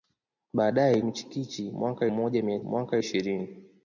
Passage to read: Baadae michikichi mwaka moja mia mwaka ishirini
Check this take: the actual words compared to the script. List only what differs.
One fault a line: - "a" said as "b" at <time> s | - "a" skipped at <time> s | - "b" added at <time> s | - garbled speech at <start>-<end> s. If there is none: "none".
none